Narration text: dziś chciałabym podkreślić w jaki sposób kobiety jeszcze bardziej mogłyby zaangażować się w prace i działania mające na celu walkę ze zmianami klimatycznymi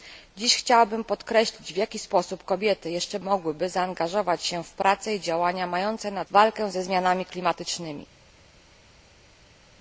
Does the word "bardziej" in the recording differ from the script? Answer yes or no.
yes